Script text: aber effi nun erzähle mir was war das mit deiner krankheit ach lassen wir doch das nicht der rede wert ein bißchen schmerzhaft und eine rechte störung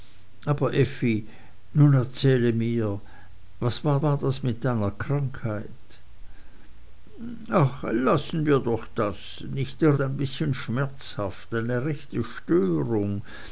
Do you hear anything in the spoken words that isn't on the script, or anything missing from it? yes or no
yes